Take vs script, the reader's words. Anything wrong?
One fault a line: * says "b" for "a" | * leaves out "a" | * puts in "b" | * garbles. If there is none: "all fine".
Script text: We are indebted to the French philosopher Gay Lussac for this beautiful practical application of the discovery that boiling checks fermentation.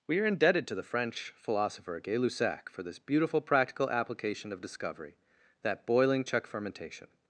* leaves out "the"
* says "check" for "checks"